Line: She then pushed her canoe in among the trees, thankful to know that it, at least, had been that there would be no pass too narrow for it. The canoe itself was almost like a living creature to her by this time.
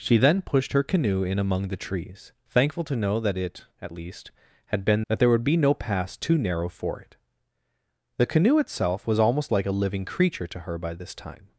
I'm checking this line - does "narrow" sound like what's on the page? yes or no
yes